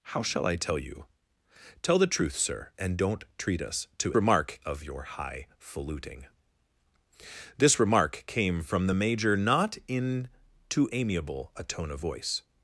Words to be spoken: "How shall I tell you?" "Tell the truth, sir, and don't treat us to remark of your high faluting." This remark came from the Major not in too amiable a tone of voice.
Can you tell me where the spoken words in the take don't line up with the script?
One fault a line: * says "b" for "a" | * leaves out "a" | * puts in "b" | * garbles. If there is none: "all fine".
all fine